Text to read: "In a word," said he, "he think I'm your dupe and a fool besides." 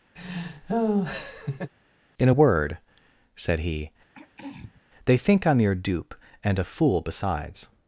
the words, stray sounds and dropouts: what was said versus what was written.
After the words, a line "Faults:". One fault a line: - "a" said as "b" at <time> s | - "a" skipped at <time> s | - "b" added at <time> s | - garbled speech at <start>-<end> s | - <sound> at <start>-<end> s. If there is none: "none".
"In a word," said he, "they think I'm your dupe and a fool besides."
Faults:
- laugh at 0.2-1.7 s
- throat clearing at 4.1-4.8 s
- "he" said as "they" at 5.1 s